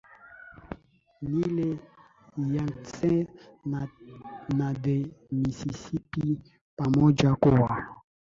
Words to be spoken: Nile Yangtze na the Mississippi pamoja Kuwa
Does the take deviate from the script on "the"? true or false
false